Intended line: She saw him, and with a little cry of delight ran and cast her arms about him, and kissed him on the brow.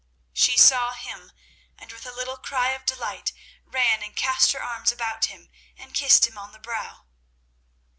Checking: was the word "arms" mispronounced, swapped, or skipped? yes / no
no